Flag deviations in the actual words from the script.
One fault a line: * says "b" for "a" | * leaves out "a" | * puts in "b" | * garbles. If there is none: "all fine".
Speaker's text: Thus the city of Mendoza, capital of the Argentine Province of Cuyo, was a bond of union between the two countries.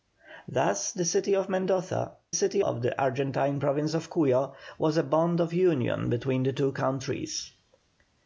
* says "city" for "capital"